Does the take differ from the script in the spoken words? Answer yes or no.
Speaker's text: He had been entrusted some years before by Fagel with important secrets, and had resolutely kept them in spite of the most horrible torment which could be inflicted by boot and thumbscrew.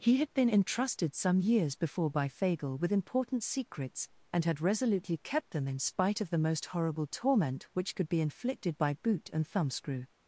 no